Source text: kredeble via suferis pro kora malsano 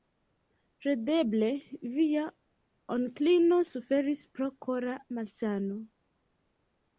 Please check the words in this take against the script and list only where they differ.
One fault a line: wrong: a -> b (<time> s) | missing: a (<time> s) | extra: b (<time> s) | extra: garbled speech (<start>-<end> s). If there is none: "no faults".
extra: onklino (3.0 s)